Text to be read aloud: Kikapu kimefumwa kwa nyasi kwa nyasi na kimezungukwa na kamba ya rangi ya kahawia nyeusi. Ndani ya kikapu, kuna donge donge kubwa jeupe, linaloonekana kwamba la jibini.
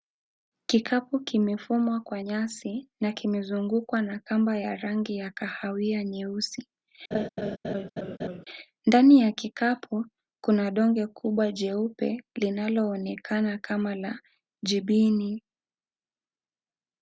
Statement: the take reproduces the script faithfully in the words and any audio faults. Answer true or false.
false